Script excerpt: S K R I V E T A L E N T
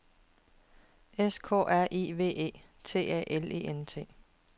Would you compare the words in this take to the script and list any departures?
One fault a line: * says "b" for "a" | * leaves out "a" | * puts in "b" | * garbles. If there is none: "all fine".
all fine